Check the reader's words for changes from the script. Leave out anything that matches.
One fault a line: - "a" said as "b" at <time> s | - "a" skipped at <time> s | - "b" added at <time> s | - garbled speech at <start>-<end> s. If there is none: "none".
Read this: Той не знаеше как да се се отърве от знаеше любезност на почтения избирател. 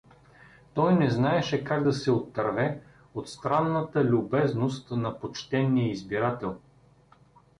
- "се" skipped at 2.1 s
- "знаеше" said as "странната" at 3.3 s